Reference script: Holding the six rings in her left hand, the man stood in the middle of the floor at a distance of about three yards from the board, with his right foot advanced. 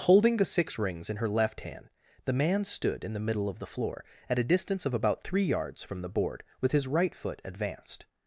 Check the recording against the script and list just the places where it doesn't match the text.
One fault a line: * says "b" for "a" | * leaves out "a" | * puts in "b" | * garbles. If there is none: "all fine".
all fine